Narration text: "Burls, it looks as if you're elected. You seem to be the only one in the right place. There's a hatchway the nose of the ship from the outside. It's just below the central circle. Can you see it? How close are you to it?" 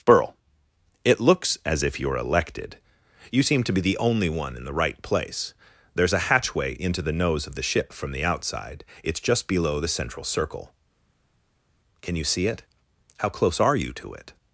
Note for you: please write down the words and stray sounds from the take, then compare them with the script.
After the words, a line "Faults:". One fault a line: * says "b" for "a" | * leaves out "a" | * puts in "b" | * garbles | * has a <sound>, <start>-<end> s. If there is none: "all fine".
"Burl, it looks as if you're elected. You seem to be the only one in the right place. There's a hatchway into the nose of the ship from the outside. It's just below the central circle. Can you see it? How close are you to it?"
Faults:
* says "Burl" for "Burls"
* puts in "into"